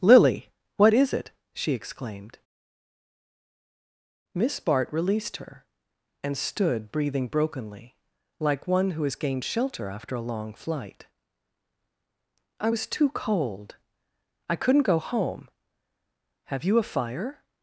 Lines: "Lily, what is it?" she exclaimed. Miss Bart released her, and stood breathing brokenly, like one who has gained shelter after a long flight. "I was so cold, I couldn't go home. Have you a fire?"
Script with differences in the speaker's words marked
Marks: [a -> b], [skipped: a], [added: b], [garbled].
"Lily, what is it?" she exclaimed. Miss Bart released her, and stood breathing brokenly, like one who has gained shelter after a long flight. "I was [so -> too] cold, I couldn't go home. Have you a fire?"